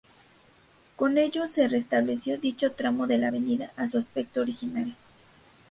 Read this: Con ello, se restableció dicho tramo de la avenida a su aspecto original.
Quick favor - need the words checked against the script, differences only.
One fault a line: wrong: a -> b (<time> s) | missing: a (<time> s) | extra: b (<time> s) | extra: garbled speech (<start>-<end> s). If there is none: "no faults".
no faults